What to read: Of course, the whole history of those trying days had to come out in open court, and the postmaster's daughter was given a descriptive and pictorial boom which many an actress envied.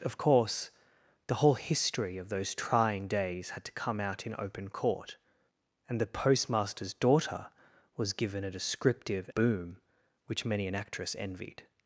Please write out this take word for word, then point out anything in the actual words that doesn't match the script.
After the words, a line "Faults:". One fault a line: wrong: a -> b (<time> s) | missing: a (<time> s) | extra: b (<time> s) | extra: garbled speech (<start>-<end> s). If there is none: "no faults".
Of course, the whole history of those trying days had to come out in open court, and the postmaster's daughter was given a descriptive boom which many an actress envied.
Faults:
missing: and pictorial (9.3 s)